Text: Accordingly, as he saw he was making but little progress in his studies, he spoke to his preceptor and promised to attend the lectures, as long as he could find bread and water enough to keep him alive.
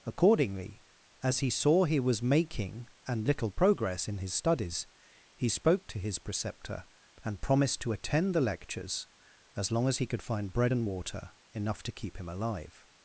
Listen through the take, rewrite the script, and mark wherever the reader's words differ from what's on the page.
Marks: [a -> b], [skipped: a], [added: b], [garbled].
Accordingly, as he saw he was making [but -> and] little progress in his studies, he spoke to his preceptor and promised to attend the lectures, as long as he could find bread and water enough to keep him alive.